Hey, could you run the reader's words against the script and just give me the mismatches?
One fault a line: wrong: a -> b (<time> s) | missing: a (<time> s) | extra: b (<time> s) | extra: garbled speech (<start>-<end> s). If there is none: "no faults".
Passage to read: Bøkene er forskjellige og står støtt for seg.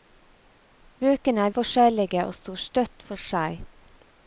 no faults